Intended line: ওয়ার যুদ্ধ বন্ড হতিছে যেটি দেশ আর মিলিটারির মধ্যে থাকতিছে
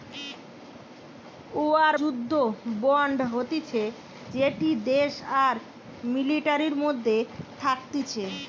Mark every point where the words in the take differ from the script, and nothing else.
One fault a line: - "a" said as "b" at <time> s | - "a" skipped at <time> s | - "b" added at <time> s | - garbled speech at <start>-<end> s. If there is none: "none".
none